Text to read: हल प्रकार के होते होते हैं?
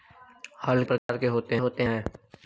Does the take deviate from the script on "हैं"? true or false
false